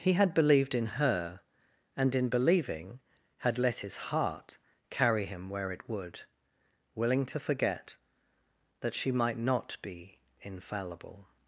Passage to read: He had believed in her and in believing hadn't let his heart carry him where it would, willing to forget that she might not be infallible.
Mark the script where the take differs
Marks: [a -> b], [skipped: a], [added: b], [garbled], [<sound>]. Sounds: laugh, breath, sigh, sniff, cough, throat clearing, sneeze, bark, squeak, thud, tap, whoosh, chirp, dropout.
He had believed in her and in believing [hadn't -> had] let his heart carry him where it would, willing to forget that she might not be infallible.